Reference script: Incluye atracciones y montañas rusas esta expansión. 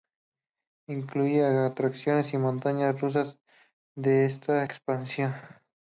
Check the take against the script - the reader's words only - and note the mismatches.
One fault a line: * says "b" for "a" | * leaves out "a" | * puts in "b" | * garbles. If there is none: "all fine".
* puts in "de"